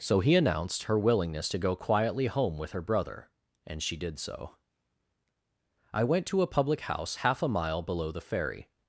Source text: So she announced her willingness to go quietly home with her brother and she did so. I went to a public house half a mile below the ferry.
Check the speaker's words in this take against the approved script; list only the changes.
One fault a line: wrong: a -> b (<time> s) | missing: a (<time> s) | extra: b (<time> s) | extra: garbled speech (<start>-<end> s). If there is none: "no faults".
wrong: she -> he (0.2 s)